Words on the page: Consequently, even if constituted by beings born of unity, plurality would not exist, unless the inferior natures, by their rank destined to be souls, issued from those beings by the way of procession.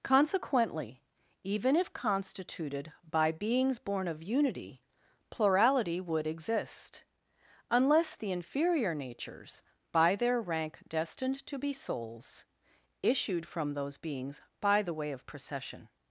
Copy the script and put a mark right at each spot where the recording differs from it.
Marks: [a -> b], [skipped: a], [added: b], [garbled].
Consequently, even if constituted by beings born of unity, plurality would [skipped: not] exist, unless the inferior natures, by their rank destined to be souls, issued from those beings by the way of procession.